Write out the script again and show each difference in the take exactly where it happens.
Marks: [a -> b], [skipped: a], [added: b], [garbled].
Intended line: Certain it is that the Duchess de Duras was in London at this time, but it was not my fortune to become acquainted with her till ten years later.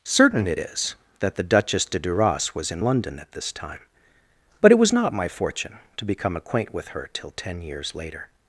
Certain it is that the Duchess de Duras was in London at this time, but it was not my fortune to become [acquainted -> acquaint] with her till ten years later.